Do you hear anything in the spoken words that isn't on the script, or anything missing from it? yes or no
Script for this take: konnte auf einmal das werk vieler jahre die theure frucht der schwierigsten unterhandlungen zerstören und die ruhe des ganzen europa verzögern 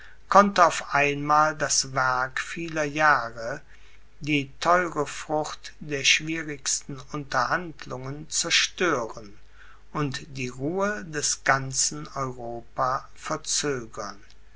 no